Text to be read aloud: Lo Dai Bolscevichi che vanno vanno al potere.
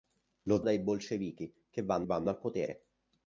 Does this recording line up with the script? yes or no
yes